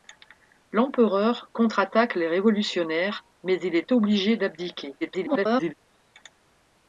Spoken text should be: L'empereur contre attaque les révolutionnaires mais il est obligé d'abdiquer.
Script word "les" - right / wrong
right